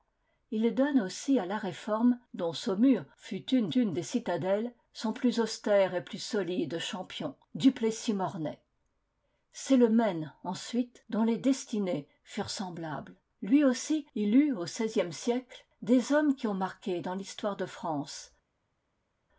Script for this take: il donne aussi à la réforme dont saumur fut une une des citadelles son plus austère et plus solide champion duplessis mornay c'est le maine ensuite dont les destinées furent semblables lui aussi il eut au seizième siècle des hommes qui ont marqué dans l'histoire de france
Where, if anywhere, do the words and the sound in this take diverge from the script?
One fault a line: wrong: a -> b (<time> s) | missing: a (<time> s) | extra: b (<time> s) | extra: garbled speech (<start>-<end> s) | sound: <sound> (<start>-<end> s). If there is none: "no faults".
no faults